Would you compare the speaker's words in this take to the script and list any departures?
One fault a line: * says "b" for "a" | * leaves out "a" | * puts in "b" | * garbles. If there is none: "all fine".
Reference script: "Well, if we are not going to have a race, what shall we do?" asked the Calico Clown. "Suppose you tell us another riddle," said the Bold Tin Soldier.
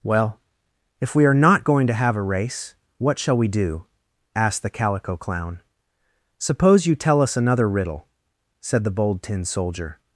all fine